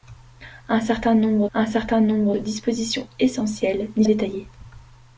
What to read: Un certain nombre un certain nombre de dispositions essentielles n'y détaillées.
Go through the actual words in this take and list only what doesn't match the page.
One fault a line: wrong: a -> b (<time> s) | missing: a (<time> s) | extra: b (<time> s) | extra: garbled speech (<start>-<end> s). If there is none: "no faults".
no faults